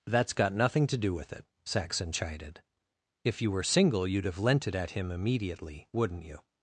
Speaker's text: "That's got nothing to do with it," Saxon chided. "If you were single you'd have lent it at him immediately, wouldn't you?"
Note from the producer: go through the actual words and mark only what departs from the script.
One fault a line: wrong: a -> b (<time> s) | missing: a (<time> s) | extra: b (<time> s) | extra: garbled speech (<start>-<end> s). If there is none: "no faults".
no faults